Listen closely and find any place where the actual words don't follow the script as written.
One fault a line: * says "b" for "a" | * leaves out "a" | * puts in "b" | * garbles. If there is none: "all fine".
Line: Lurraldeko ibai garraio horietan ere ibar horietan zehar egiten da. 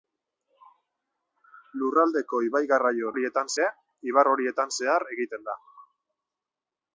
all fine